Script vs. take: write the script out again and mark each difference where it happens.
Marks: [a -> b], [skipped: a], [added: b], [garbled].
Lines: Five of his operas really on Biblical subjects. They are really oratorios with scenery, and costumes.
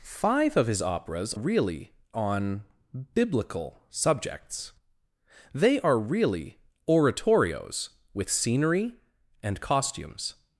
Five of his operas really on Biblical subjects. They are really oratorios with scenery, and costumes.